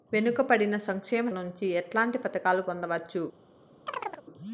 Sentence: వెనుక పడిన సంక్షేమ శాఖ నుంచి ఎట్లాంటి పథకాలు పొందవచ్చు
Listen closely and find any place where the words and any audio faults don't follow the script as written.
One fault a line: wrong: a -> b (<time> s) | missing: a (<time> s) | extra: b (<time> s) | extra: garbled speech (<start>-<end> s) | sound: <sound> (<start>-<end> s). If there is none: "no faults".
missing: శాఖ (1.3 s)
sound: chirp (3.9-4.2 s)